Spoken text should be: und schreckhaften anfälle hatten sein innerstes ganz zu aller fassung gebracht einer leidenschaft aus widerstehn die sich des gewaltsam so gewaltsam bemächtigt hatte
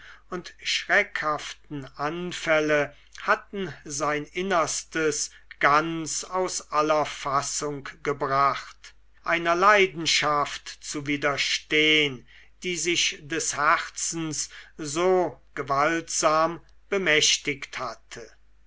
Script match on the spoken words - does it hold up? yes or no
no